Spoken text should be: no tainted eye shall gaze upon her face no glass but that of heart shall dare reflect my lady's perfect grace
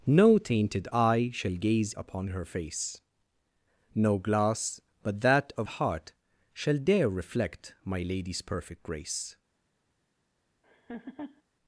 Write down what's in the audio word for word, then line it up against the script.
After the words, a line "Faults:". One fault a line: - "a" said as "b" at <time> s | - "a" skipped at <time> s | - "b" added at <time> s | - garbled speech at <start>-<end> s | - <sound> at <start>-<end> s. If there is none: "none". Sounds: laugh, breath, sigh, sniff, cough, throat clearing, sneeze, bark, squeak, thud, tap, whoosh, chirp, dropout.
no tainted eye shall gaze upon her face no glass but that of heart shall dare reflect my lady's perfect grace
Faults:
- laugh at 10.6-11.4 s